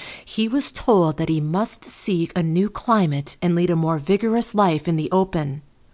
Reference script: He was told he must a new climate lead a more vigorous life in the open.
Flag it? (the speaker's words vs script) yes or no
yes